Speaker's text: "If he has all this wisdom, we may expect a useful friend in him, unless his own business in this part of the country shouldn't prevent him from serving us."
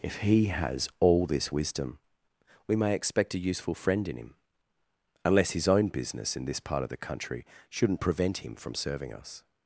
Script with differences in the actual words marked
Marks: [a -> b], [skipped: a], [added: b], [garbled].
"If he has all this wisdom, we may expect a useful friend in him, unless his own business in this part of the country shouldn't prevent him from serving us."